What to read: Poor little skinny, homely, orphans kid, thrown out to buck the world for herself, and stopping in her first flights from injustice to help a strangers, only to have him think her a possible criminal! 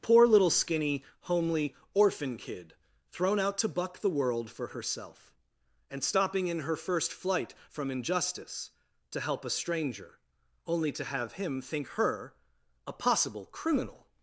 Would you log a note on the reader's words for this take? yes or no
yes